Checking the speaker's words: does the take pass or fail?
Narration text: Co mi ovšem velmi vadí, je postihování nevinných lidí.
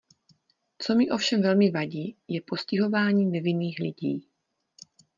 pass